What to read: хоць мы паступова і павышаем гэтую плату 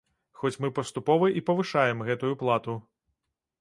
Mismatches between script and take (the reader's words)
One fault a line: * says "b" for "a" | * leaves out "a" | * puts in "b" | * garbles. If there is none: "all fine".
all fine